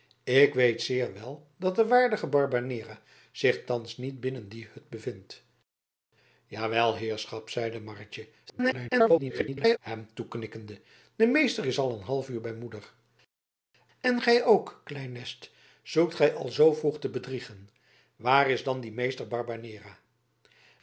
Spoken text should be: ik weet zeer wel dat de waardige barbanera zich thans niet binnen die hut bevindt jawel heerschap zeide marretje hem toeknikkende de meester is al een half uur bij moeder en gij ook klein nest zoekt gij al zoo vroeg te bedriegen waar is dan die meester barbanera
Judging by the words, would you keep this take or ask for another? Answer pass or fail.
fail